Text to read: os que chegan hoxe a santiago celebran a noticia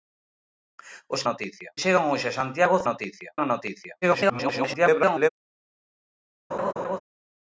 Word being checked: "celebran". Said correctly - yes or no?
no